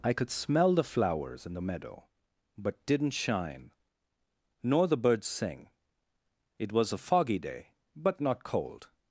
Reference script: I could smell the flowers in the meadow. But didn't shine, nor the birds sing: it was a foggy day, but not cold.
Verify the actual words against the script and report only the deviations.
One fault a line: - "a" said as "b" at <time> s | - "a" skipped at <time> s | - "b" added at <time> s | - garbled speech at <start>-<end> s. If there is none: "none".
none